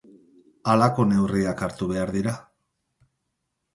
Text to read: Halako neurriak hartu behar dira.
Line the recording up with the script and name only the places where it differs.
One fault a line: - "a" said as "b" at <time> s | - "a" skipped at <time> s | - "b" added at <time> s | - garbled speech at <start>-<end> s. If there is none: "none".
none